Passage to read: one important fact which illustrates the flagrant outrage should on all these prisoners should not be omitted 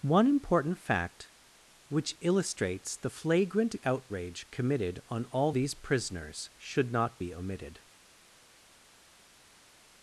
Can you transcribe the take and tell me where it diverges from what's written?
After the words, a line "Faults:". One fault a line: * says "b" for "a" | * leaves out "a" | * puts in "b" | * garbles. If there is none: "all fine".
one important fact which illustrates the flagrant outrage committed on all these prisoners should not be omitted
Faults:
* says "committed" for "should"